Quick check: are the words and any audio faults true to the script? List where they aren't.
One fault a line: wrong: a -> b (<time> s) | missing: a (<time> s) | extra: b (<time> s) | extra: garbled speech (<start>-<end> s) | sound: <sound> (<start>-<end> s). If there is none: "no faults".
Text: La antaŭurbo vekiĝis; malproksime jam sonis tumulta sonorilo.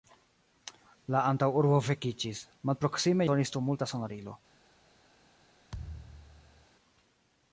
missing: jam (3.3 s)
sound: thud (5.7-6.7 s)